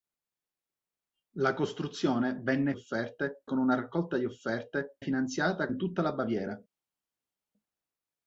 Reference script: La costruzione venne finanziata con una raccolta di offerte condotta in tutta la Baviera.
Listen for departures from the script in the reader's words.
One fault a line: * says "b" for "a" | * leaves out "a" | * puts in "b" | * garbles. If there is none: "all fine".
* says "offerte" for "finanziata"
* says "finanziata" for "condotta"